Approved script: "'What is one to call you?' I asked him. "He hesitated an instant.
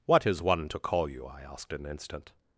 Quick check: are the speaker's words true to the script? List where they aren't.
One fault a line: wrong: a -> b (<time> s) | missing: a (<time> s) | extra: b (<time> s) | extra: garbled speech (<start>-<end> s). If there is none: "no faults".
missing: him He hesitated (1.7 s)